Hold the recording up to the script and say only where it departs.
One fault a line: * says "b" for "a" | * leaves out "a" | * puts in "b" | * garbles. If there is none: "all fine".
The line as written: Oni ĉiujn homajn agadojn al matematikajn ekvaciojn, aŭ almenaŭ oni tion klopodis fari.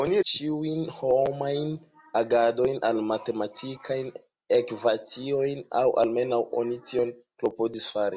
all fine